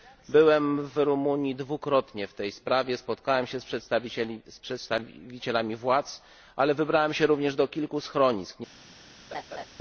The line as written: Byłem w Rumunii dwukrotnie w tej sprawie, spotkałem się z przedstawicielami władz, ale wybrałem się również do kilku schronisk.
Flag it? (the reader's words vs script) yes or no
no